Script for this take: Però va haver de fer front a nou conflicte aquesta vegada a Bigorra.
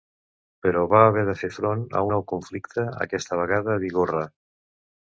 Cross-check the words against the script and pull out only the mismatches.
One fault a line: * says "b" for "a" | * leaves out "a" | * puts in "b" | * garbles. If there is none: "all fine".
all fine